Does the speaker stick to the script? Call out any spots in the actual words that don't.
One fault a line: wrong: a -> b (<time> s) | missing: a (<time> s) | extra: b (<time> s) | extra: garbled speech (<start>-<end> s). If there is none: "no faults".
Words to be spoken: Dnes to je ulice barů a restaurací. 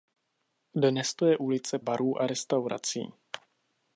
no faults